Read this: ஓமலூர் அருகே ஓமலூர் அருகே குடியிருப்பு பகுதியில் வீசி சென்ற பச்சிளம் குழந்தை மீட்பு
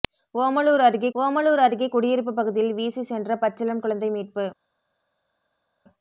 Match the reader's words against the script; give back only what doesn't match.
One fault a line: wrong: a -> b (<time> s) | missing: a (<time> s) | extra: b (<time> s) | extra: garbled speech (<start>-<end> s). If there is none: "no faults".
no faults